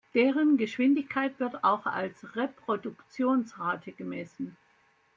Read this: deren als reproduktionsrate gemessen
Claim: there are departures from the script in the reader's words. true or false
true